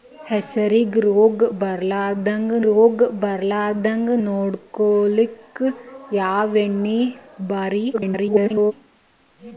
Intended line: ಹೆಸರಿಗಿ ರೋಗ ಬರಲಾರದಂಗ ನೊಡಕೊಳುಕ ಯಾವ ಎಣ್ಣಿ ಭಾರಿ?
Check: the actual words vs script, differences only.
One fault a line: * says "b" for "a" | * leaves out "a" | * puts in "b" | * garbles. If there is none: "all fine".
* puts in "ರೋಗ ಬರಲಾರದಂಗ"
* garbles